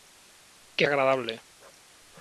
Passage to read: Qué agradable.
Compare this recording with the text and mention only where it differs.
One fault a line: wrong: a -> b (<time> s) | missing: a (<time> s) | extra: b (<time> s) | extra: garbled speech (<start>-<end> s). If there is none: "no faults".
no faults